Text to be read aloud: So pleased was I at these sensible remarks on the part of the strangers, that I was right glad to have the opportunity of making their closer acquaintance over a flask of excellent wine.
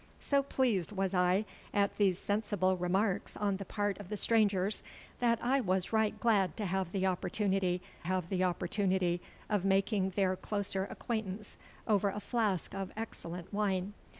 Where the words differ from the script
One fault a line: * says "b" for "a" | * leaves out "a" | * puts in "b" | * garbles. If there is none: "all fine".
* puts in "have the opportunity"